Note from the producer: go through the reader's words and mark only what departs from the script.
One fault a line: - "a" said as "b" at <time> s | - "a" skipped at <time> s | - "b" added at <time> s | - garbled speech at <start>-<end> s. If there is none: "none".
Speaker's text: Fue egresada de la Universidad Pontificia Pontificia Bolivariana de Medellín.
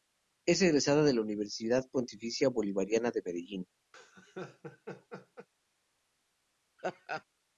- "Fue" said as "Es" at 0.5 s
- "Pontificia" skipped at 2.5 s